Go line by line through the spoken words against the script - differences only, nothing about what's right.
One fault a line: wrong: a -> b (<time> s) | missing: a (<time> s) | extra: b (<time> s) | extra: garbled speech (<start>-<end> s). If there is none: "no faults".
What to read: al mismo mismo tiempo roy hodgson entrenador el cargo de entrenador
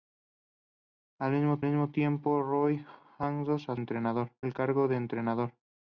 no faults